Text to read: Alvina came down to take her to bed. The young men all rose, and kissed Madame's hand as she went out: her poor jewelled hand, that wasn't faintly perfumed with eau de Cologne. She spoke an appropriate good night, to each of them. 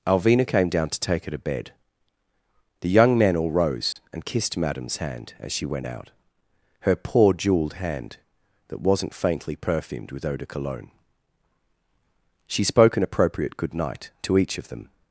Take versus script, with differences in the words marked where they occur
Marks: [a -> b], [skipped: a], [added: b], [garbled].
Alvina came down to take her to bed. The young men all rose, and kissed Madame's hand as she went out: her poor jewelled hand, that wasn't faintly perfumed with eau de Cologne. She spoke an appropriate good night, to each of them.